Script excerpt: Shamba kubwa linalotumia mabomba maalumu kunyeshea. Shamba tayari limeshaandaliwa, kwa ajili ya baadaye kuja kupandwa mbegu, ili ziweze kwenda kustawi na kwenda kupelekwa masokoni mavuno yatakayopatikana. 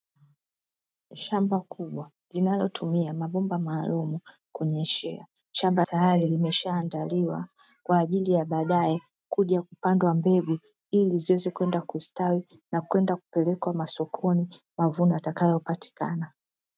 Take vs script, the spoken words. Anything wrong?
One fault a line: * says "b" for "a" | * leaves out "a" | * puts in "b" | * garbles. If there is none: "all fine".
all fine